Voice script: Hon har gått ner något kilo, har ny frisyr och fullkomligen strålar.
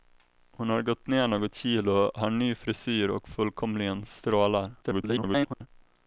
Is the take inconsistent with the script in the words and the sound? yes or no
yes